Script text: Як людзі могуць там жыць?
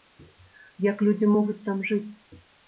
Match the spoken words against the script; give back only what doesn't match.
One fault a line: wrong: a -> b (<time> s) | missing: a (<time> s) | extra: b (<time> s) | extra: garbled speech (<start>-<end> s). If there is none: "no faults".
no faults